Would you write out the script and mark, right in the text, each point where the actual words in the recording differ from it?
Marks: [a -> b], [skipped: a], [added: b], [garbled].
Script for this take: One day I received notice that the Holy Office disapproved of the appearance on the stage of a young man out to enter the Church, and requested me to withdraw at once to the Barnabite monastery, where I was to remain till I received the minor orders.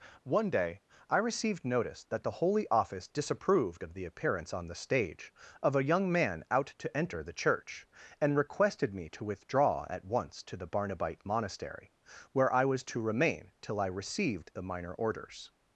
One day I received notice that the Holy Office disapproved of the appearance on the stage of a young man out to enter the Church, and requested me to withdraw at once to the Barnabite monastery, where I was to remain till I received the minor orders.